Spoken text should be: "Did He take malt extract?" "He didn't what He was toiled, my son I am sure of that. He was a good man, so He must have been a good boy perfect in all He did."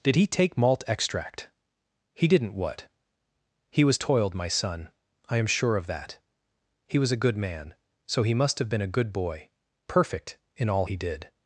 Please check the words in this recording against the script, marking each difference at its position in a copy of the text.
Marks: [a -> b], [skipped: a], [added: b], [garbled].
"Did He take malt extract?" "He didn't what He was toiled, my son I am sure of that. He was a good man, so He must have been a good boy perfect in all He did."